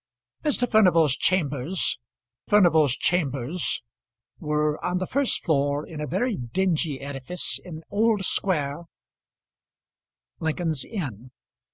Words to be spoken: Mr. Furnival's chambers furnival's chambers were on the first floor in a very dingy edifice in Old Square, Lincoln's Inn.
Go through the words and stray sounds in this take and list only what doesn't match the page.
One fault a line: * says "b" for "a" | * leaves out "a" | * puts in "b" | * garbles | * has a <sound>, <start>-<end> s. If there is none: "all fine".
all fine